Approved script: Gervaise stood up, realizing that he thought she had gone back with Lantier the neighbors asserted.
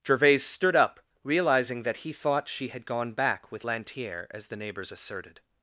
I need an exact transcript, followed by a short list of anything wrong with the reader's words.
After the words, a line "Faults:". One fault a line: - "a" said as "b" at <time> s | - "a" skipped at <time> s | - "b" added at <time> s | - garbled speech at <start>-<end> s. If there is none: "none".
Gervaise stood up, realizing that he thought she had gone back with Lantier as the neighbors asserted.
Faults:
- "as" added at 4.3 s